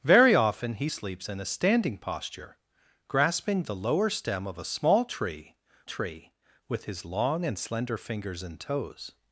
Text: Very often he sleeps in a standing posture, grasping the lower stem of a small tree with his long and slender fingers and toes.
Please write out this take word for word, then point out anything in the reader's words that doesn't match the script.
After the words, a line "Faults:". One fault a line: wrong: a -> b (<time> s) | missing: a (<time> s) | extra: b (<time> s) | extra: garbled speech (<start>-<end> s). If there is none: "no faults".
Very often he sleeps in a standing posture, grasping the lower stem of a small tree tree with his long and slender fingers and toes.
Faults:
extra: tree (5.8 s)